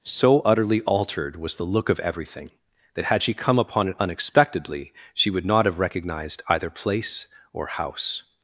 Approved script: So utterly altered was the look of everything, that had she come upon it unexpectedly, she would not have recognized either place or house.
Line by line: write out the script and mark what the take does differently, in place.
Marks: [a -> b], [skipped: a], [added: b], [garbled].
So utterly altered was the look of everything, that had she come upon it unexpectedly, she would not have recognized either place or house.